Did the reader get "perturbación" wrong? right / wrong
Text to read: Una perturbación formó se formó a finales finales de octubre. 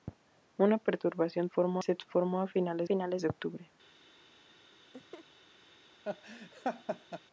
right